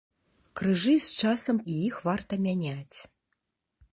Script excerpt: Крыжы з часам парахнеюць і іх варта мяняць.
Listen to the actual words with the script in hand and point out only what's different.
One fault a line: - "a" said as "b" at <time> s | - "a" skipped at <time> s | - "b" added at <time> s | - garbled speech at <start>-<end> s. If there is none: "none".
- "парахнеюць" skipped at 1.6 s